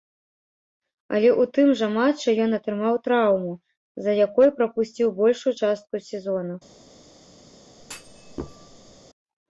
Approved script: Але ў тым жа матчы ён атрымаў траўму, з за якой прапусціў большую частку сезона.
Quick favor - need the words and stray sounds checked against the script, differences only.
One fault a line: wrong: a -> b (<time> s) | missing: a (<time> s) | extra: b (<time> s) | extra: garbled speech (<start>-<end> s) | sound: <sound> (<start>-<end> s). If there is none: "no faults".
sound: thud (7.8-9.0 s)